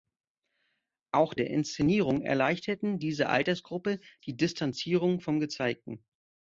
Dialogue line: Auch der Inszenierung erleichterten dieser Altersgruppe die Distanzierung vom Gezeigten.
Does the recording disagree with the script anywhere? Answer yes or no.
no